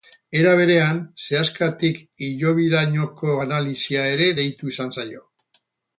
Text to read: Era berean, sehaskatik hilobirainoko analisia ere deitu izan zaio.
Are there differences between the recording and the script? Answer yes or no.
no